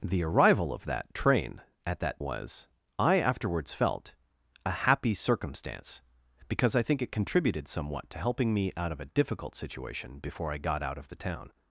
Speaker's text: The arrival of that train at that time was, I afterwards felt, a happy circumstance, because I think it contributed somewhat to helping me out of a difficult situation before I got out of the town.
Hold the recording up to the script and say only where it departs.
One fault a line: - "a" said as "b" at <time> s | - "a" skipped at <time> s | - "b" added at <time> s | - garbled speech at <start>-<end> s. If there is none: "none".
- "time" skipped at 2.2 s